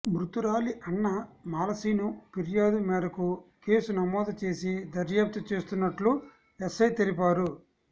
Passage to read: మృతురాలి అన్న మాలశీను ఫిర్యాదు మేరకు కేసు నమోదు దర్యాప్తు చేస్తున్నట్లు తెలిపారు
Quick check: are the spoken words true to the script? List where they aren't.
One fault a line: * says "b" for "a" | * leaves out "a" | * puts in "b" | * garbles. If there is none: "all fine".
* puts in "చేసి"
* puts in "ఎస్ఐ"